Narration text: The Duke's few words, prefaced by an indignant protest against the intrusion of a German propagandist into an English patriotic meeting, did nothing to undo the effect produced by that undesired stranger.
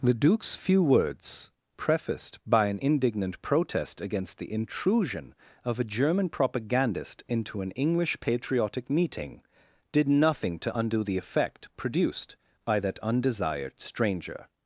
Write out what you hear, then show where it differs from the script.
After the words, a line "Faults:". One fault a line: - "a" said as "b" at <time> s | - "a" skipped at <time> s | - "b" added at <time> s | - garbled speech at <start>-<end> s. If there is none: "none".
The Duke's few words, prefaced by an indignant protest against the intrusion of a German propagandist into an English patriotic meeting, did nothing to undo the effect produced by that undesired stranger.
Faults:
none